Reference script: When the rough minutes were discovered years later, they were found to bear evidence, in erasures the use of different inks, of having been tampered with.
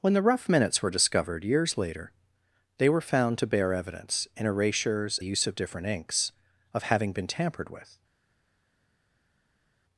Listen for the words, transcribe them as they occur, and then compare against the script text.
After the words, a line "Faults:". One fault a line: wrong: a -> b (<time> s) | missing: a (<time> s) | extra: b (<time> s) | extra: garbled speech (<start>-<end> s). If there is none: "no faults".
When the rough minutes were discovered years later, they were found to bear evidence, in erasures the use of different inks, of having been tampered with.
Faults:
no faults